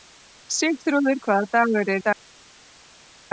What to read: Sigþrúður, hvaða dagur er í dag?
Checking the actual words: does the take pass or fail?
fail